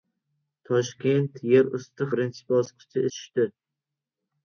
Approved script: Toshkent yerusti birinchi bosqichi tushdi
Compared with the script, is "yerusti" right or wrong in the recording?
right